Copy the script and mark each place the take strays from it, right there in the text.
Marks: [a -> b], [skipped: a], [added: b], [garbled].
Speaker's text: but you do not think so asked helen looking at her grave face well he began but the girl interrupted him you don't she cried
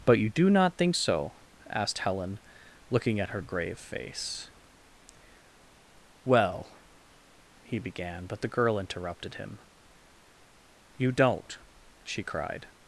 but you do not think so asked helen looking at her grave face well he began but the girl interrupted him you don't she cried